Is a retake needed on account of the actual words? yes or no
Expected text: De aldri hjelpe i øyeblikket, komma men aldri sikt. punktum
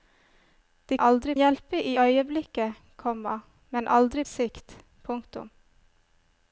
no